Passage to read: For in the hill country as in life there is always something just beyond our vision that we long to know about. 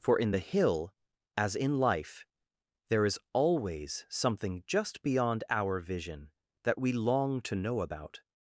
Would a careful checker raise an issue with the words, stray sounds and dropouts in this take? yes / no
yes